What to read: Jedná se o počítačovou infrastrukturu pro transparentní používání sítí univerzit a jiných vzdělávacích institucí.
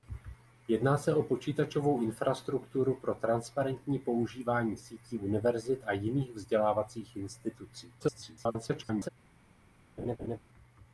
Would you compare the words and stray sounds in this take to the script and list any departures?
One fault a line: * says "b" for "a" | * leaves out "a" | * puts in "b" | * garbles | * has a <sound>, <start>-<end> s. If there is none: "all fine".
* garbles
* has a laugh, 10.0-10.4 s